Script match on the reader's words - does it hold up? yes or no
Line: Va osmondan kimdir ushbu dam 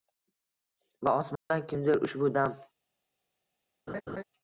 yes